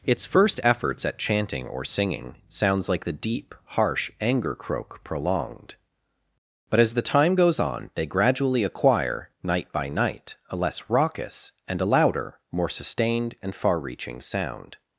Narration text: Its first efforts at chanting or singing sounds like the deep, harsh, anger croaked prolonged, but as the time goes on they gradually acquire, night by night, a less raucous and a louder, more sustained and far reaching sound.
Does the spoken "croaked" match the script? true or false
false